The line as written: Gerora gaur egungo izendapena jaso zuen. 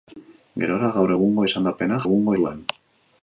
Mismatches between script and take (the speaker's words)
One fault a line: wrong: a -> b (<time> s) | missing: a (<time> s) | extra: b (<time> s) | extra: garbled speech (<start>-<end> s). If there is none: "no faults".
wrong: jaso -> egungo (2.0 s)